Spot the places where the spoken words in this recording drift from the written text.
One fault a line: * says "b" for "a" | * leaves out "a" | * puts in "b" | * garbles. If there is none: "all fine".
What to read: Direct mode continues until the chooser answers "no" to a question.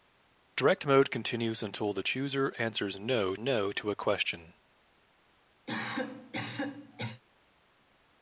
* puts in "no"